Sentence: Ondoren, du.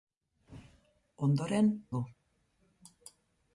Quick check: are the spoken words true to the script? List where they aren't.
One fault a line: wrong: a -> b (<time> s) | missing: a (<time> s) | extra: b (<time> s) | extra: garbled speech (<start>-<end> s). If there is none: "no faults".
no faults